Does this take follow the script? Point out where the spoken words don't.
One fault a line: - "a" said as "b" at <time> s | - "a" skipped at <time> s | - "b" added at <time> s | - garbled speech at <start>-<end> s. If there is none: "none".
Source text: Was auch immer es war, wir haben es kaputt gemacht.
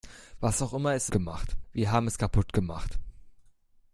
- "war" said as "gemacht" at 1.1 s